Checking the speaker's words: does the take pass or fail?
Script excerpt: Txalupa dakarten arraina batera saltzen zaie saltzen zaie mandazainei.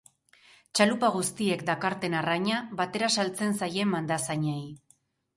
fail